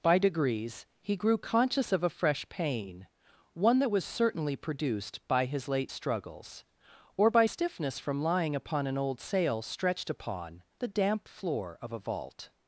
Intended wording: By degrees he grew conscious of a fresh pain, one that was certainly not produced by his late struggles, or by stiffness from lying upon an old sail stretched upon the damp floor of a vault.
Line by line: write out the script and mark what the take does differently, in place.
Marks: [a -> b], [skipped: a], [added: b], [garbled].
By degrees he grew conscious of a fresh pain, one that was certainly [skipped: not] produced by his late struggles, or by stiffness from lying upon an old sail stretched upon the damp floor of a vault.